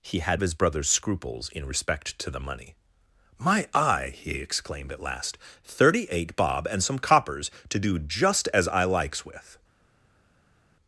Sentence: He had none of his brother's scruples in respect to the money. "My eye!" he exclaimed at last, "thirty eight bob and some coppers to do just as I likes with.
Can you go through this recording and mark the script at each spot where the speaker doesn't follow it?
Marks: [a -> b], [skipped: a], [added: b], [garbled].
He had [skipped: none] of his brother's scruples in respect to the money. "My eye!" he exclaimed at last, "thirty eight bob and some coppers to do just as I likes with.